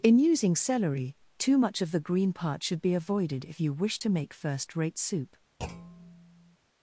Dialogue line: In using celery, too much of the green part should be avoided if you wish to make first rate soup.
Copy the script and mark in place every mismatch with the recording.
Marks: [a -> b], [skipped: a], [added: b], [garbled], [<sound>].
In using celery, too much of the green part should be avoided if you wish to make first rate soup. [thud]